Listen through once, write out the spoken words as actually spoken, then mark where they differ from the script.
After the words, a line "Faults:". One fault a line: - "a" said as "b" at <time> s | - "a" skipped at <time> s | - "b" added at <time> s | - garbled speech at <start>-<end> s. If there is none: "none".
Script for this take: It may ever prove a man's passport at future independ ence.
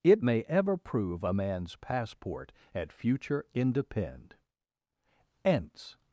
It may ever prove a man's passport at future independ ence.
Faults:
none